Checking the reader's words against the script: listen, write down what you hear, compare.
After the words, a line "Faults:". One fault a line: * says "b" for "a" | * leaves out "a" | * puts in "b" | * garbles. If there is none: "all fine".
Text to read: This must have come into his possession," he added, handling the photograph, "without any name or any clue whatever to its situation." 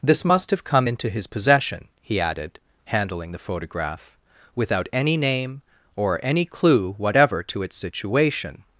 This must have come into his possession," he added, handling the photograph, "without any name or any clue whatever to its situation."
Faults:
all fine